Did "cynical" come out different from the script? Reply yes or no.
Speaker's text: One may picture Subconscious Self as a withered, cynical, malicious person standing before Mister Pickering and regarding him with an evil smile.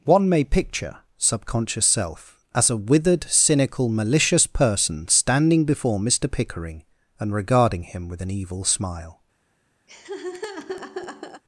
no